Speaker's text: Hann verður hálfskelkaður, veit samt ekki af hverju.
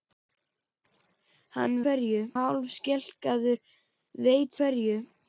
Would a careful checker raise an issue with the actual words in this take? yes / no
yes